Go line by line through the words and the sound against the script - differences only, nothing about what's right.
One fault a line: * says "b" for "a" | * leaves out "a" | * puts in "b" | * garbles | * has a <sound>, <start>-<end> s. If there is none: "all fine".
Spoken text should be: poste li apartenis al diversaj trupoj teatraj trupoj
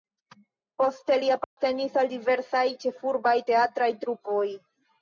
* has a dropout, 1.4-1.6 s
* says "ĉefurbaj" for "trupoj"